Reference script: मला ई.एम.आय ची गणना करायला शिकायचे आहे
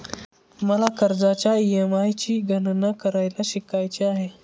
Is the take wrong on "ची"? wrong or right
right